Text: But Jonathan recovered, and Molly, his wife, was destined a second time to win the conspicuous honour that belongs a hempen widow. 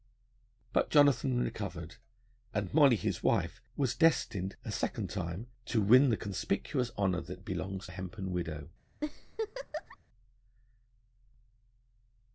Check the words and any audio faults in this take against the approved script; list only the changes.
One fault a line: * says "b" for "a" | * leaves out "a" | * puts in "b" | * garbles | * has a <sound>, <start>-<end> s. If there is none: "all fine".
* has a laugh, 9.0-10.0 s